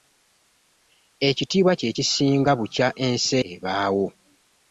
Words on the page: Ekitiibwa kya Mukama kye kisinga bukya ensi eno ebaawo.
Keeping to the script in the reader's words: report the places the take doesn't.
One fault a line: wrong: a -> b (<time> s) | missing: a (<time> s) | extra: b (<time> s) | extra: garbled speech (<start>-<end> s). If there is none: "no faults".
missing: kya Mukama (1.7 s)
missing: eno (3.4 s)